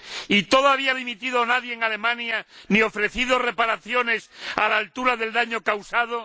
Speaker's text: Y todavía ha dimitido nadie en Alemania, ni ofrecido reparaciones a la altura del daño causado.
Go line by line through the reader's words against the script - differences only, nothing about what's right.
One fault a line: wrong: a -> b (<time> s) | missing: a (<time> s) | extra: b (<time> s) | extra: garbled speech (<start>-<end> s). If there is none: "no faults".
no faults